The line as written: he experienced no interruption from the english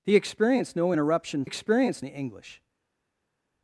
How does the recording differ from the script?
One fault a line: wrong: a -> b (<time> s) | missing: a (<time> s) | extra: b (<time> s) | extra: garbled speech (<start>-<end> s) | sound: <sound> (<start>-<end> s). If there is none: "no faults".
wrong: from -> experienced (1.4 s)